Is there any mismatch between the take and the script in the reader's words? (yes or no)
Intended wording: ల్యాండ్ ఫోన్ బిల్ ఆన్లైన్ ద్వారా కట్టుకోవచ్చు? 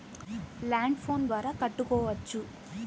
yes